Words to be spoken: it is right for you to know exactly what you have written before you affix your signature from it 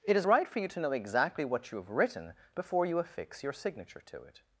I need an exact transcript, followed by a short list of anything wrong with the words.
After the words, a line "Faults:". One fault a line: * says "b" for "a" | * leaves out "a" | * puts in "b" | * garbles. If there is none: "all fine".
it is right for you to know exactly what you have written before you affix your signature to it
Faults:
* says "to" for "from"